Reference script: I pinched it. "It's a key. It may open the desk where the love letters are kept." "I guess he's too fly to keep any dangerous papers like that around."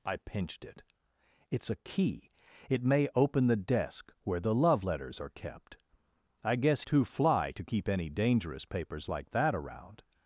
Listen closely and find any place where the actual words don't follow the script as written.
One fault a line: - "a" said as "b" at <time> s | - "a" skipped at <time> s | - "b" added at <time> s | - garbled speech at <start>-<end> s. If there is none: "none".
- "he's" skipped at 6.8 s